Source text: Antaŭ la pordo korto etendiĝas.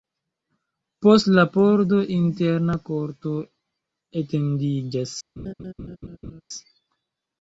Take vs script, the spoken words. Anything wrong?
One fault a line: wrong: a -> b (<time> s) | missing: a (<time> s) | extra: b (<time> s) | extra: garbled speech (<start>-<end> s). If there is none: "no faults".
wrong: Antaŭ -> Post (1.1 s)
extra: interna (2.1 s)